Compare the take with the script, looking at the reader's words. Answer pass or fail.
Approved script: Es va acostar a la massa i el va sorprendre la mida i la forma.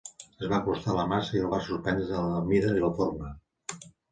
pass